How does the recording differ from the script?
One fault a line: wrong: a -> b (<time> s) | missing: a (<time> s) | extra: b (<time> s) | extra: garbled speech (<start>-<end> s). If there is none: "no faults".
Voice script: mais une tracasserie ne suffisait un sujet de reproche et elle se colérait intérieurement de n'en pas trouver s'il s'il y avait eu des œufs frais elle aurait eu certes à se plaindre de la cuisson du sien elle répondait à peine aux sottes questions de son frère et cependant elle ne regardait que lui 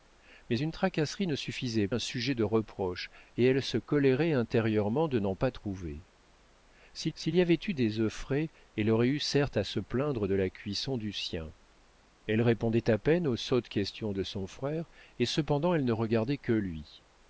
no faults